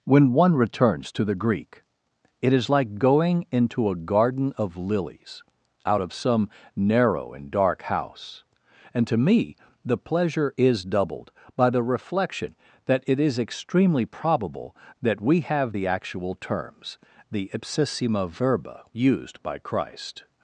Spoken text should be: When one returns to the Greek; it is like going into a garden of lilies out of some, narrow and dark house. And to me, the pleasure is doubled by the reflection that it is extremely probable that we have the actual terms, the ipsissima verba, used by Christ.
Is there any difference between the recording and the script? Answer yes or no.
no